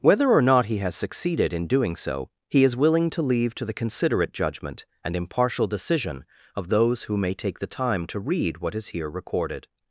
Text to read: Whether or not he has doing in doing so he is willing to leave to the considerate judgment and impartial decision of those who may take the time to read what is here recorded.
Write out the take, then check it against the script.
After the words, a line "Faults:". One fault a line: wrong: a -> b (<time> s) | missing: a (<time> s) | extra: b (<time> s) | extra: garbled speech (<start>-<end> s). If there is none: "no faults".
Whether or not he has succeeded in doing so he is willing to leave to the considerate judgment and impartial decision of those who may take the time to read what is here recorded.
Faults:
wrong: doing -> succeeded (0.9 s)